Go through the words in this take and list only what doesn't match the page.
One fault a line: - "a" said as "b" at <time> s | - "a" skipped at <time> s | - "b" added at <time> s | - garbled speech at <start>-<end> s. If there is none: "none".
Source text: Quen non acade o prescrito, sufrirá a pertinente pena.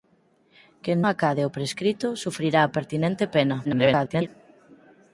- "non" skipped at 1.0 s
- garbled speech at 3.6-4.3 s